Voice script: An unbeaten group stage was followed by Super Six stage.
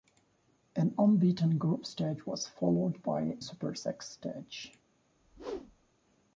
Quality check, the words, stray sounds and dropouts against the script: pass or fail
fail